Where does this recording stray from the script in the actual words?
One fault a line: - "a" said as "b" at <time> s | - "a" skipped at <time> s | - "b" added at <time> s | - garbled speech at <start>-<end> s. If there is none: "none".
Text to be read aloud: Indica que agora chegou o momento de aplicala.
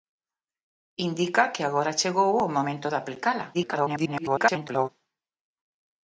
- garbled speech at 3.5-4.9 s